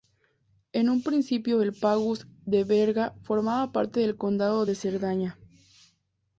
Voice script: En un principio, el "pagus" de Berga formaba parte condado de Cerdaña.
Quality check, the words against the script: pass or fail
fail